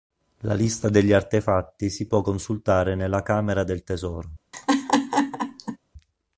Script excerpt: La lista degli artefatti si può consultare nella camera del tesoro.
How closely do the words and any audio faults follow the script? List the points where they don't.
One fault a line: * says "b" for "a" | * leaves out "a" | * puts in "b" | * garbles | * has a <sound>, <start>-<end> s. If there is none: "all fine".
* has a laugh, 4.5-5.8 s